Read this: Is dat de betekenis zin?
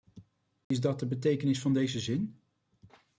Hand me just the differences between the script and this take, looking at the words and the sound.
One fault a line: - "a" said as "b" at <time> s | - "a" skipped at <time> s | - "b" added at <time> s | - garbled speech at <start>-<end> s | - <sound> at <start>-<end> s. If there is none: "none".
- dropout at 0.6-0.7 s
- "van deze" added at 1.6 s